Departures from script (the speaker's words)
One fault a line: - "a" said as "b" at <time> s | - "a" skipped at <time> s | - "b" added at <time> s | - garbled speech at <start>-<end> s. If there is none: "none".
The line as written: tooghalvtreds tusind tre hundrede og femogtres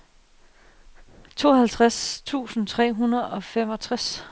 none